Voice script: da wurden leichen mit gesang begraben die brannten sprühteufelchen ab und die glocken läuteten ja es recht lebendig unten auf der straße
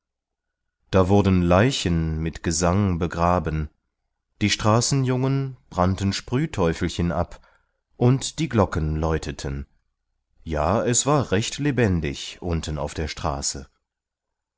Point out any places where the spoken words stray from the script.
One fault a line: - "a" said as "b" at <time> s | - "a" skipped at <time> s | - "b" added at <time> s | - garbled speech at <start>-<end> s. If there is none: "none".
- "straßenjungen" added at 4.5 s
- "war" added at 11.1 s